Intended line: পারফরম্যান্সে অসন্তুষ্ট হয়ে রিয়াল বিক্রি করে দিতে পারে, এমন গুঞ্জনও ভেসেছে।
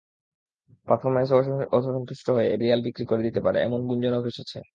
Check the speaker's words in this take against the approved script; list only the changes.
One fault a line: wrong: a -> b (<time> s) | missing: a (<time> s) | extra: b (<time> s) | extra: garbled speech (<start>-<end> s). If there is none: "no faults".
no faults